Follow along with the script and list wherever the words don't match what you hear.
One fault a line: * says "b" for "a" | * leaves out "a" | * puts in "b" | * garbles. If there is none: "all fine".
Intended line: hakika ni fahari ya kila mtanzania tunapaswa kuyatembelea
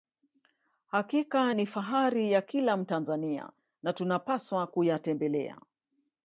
* puts in "na"